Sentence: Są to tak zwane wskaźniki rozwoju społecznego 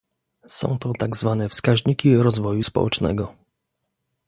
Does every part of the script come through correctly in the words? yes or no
yes